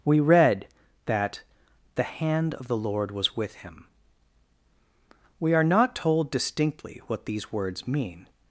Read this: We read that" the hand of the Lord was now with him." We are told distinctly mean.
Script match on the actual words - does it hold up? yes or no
no